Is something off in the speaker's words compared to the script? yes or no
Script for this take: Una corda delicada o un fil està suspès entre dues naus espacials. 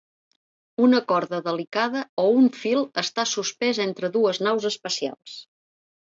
no